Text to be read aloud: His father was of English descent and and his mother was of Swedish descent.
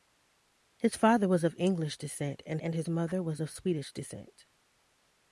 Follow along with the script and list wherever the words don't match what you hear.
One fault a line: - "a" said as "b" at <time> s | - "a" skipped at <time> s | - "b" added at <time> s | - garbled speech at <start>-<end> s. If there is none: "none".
none